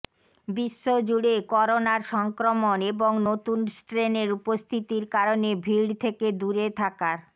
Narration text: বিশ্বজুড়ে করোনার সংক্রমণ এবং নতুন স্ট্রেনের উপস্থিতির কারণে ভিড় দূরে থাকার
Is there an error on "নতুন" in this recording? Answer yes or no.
no